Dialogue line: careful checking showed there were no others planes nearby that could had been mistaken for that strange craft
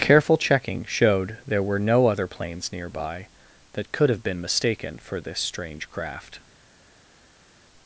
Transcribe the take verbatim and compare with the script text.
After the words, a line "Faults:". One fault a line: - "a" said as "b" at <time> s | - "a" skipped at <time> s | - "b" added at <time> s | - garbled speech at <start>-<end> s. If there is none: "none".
careful checking showed there were no other planes nearby that could have been mistaken for this strange craft
Faults:
- "others" said as "other" at 2.1 s
- "had" said as "have" at 4.1 s
- "that" said as "this" at 5.2 s